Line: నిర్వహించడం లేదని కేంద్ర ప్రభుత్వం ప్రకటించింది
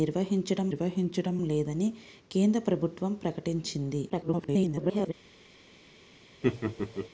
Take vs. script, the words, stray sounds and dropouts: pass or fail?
fail